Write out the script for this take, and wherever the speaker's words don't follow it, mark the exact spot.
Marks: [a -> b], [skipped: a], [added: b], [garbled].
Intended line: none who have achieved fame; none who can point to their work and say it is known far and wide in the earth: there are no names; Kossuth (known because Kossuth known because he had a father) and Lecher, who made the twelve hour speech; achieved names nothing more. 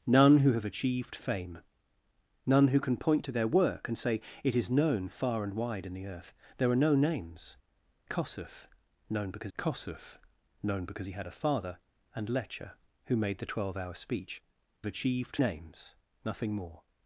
none who have achieved fame; none who can point to their work and say it is known far and wide in the earth: there are no names; Kossuth (known because Kossuth known because he had a father) and Lecher, who made the twelve hour speech; achieved names nothing more.